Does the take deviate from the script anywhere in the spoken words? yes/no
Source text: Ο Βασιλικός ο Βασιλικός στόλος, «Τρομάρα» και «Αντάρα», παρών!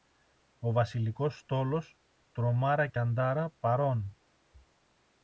yes